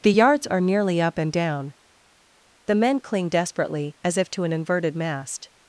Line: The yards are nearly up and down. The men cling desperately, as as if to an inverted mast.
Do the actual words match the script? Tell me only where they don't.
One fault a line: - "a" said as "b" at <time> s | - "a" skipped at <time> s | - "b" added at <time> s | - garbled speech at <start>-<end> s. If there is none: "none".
- "as" skipped at 4.2 s